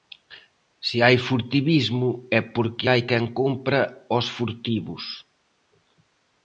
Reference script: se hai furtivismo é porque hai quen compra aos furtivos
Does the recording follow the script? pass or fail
pass